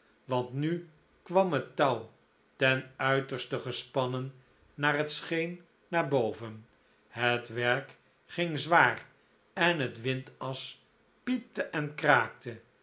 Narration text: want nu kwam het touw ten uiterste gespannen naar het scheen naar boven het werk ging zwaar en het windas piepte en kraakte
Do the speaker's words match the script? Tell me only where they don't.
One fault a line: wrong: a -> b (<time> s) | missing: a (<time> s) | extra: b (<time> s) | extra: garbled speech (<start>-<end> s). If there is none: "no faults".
no faults